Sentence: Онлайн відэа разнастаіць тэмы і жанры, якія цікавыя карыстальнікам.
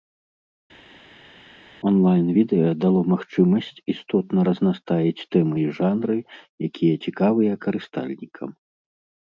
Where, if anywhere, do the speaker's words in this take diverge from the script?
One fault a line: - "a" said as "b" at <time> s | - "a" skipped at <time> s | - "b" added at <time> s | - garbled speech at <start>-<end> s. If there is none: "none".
- "дало магчымасць істотна" added at 2.8 s